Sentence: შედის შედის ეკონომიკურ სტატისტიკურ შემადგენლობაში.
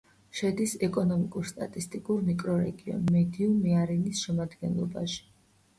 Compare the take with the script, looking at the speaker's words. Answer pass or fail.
fail